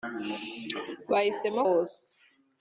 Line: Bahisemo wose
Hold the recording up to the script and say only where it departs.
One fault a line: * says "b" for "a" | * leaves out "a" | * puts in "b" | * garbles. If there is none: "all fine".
all fine